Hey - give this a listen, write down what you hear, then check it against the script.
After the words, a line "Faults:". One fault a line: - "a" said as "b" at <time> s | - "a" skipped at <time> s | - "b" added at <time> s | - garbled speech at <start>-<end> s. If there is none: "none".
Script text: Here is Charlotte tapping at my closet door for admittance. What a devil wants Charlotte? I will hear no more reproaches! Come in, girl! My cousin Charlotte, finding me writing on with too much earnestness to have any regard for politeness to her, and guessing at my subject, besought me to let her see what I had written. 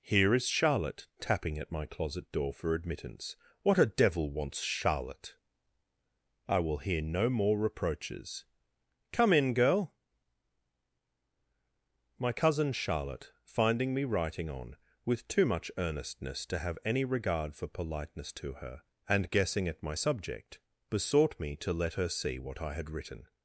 Here is Charlotte tapping at my closet door for admittance. What a devil wants Charlotte? I will hear no more reproaches! Come in, girl! My cousin Charlotte, finding me writing on with too much earnestness to have any regard for politeness to her, and guessing at my subject, besought me to let her see what I had written.
Faults:
none